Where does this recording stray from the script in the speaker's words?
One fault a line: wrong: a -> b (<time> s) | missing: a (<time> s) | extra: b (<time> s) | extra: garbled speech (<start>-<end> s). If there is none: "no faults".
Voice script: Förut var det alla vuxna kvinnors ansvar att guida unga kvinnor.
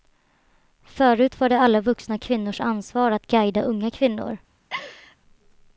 no faults